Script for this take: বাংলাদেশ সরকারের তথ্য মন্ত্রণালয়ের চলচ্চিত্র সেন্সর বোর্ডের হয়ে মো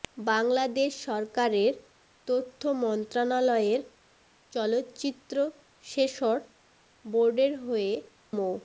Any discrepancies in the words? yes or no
no